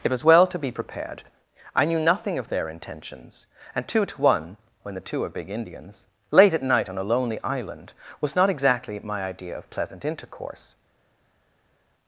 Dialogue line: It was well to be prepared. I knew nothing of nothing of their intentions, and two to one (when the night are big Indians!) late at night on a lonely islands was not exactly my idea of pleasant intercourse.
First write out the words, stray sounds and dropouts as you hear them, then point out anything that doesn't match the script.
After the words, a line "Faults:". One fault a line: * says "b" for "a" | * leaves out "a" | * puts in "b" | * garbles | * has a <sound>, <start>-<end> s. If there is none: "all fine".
It was well to be prepared. I knew nothing of their intentions, and two to one (when the two are big Indians!) late at night on a lonely island was not exactly my idea of pleasant intercourse.
Faults:
* leaves out "nothing of"
* says "two" for "night"
* says "island" for "islands"